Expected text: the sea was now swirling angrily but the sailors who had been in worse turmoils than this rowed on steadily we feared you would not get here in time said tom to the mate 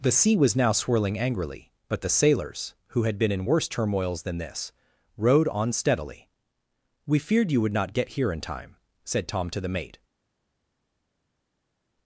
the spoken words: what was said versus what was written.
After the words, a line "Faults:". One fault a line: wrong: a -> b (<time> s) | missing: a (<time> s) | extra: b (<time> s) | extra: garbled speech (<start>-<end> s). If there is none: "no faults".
the sea was now swirling angrily but the sailors who had been in worse turmoils than this rowed on steadily we feared you would not get here in time said tom to the mate
Faults:
no faults